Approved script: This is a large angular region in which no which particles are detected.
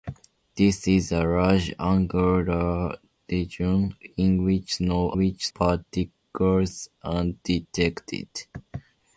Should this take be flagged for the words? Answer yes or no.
no